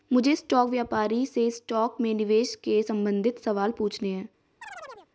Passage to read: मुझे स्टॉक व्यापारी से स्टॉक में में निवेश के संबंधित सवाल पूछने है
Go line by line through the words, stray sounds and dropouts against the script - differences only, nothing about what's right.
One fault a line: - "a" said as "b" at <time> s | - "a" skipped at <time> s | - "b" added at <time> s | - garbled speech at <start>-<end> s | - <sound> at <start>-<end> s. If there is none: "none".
- "में" skipped at 2.1 s
- chirp at 4.6-5.1 s